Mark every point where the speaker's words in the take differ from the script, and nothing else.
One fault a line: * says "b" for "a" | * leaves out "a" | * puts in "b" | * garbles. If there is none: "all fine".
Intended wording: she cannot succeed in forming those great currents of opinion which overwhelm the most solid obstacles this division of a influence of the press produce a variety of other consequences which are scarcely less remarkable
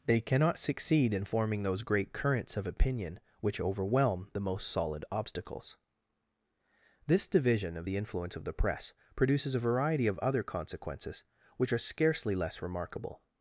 * says "they" for "she"
* says "the" for "a"
* says "produces" for "produce"